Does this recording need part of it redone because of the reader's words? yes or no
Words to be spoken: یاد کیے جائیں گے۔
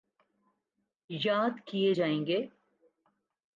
no